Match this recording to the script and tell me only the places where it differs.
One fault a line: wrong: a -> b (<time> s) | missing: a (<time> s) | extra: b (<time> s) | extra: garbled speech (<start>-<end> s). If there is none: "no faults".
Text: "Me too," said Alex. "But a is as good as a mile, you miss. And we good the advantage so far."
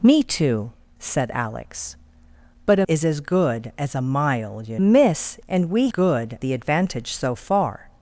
no faults